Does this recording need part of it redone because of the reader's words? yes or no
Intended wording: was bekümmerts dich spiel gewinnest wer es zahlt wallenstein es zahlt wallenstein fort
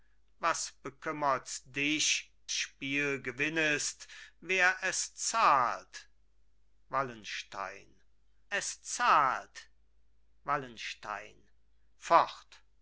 no